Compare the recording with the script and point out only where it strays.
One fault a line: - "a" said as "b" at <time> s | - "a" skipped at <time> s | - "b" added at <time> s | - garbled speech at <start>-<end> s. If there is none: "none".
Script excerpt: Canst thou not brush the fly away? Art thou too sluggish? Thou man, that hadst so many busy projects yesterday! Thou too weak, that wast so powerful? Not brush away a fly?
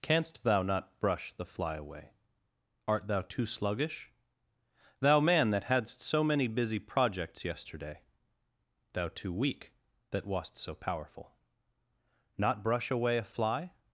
none